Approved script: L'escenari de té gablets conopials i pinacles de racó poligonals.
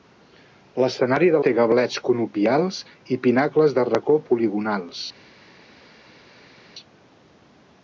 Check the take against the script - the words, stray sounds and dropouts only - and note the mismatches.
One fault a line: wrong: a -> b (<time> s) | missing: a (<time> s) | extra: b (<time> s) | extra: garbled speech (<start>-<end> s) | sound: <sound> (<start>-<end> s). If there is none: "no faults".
no faults